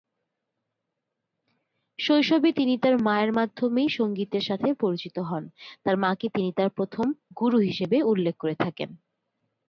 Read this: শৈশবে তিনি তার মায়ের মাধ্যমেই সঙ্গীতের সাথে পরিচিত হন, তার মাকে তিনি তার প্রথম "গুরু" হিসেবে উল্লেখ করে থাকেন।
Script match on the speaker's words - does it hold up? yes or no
yes